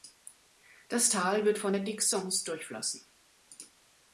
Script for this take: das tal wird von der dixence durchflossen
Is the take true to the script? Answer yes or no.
yes